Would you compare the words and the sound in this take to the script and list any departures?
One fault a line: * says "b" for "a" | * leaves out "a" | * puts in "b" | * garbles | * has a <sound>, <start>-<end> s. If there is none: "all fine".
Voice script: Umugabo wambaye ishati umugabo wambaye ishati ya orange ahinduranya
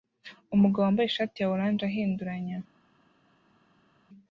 * leaves out "umugabo wambaye ishati"